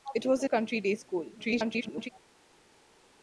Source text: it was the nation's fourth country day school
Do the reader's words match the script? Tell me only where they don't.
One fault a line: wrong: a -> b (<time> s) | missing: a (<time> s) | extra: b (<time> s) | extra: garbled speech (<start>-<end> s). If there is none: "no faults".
missing: nation's fourth (0.5 s)
extra: garbled speech (1.4-2.1 s)